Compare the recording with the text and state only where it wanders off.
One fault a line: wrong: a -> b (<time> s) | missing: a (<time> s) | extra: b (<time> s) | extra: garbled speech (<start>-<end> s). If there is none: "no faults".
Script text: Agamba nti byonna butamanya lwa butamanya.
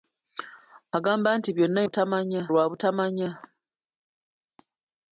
no faults